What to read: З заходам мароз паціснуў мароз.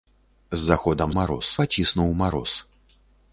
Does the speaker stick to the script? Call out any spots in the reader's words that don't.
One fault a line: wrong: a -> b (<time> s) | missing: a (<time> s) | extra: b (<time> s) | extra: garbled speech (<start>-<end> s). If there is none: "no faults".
no faults